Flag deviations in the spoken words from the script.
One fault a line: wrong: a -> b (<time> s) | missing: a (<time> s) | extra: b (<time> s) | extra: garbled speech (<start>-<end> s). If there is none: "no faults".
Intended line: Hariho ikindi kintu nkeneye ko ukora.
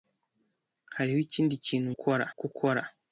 wrong: nkeneye -> ukora (1.9 s)